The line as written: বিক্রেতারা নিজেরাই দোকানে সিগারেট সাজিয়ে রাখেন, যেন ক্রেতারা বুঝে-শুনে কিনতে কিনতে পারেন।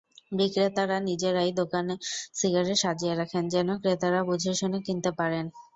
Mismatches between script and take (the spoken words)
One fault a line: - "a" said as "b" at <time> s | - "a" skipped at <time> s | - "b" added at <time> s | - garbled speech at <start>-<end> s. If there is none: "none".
- "কিনতে" skipped at 5.1 s